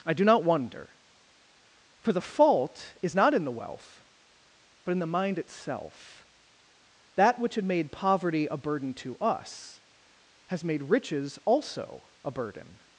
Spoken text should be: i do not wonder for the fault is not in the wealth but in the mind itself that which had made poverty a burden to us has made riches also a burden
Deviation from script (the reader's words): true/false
false